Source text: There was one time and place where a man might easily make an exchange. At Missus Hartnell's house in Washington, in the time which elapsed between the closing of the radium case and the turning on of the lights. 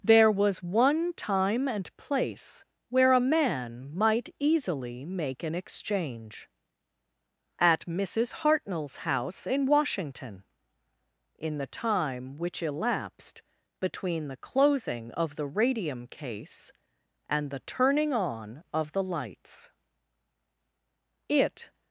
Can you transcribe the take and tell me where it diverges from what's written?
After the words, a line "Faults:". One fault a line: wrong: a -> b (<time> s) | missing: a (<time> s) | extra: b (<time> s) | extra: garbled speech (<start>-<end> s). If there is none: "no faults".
There was one time and place where a man might easily make an exchange. At Missus Hartnell's house in Washington, in the time which elapsed between the closing of the radium case and the turning on of the lights. It
Faults:
extra: It (21.3 s)